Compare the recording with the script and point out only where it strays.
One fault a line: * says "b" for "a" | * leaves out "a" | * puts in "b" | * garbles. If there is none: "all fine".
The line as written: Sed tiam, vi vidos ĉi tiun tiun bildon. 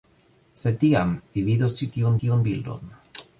all fine